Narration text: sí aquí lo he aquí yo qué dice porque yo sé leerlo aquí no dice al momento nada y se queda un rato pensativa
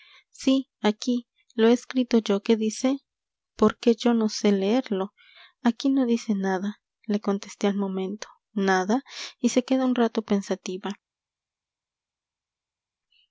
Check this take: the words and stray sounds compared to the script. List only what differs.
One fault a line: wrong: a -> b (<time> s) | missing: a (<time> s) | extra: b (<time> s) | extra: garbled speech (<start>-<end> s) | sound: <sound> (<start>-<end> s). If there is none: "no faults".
wrong: aquí -> escrito (1.7 s)
extra: no (4.2 s)
extra: nada le contesté (6.3 s)